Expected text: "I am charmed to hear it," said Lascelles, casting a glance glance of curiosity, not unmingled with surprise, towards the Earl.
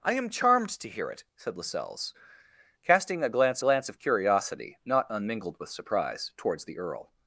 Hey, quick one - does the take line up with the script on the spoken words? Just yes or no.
yes